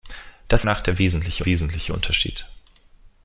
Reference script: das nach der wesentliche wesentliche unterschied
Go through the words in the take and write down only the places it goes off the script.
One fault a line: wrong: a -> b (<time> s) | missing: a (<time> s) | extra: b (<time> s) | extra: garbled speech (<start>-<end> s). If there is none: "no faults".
no faults